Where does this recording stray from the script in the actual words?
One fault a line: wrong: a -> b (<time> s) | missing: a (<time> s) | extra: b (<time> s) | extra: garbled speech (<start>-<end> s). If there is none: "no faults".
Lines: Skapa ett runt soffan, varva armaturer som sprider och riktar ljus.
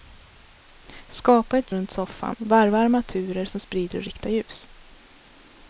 no faults